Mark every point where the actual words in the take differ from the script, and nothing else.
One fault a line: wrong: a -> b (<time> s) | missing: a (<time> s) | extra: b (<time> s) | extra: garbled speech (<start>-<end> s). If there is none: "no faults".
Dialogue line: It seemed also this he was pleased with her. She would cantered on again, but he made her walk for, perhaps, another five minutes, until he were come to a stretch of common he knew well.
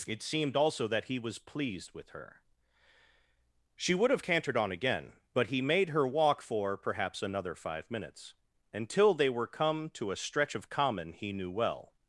wrong: this -> that (0.9 s)
extra: have (4.1 s)
wrong: he -> they (9.1 s)